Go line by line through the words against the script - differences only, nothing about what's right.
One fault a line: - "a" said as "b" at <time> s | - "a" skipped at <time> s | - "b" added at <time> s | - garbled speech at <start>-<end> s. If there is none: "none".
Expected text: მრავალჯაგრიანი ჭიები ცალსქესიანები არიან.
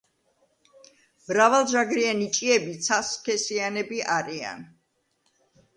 none